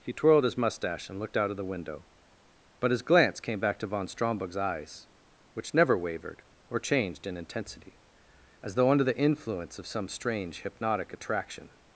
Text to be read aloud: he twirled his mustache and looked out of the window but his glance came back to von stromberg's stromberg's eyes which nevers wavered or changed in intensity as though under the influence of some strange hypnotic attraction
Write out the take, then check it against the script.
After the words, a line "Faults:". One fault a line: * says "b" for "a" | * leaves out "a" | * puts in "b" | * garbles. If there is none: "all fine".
he twirled his mustache and looked out of the window but his glance came back to von stromberg's eyes which never wavered or changed in intensity as though under the influence of some strange hypnotic attraction
Faults:
* leaves out "stromberg's"
* says "never" for "nevers"